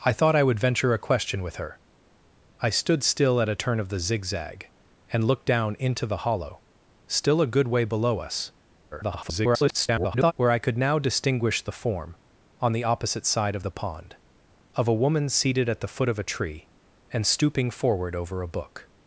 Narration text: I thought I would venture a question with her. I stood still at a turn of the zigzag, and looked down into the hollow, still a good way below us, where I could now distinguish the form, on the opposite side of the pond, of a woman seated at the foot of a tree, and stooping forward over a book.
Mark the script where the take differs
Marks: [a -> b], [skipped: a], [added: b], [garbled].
I thought I would venture a question with her. I stood still at a turn of the zigzag, and looked down into the hollow, still a good way below us, [garbled] where I could now distinguish the form, on the opposite side of the pond, of a woman seated at the foot of a tree, and stooping forward over a book.